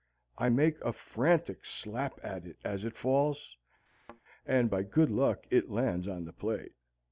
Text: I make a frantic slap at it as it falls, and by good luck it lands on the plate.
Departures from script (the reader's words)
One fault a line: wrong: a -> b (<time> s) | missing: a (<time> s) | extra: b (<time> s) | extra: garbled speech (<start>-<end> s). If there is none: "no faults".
no faults